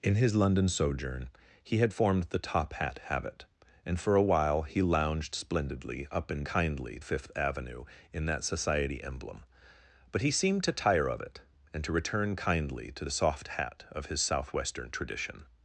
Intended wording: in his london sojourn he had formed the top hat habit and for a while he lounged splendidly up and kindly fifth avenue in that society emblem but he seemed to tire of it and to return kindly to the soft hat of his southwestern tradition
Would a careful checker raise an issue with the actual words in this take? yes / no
no